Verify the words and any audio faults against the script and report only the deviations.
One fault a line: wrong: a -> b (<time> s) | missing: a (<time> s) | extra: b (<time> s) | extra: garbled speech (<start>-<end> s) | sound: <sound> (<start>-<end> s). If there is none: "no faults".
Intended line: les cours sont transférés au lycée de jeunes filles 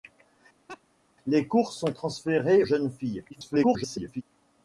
sound: laugh (0.7-0.8 s)
missing: au lycée de (2.6 s)
extra: garbled speech (3.3-4.2 s)